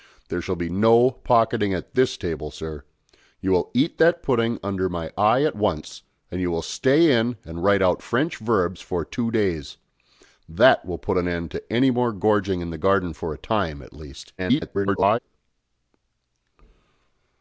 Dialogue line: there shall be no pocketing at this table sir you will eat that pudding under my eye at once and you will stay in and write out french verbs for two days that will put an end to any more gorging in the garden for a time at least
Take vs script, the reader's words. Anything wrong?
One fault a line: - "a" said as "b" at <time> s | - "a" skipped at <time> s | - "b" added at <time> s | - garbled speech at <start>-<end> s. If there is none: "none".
- garbled speech at 14.4-15.2 s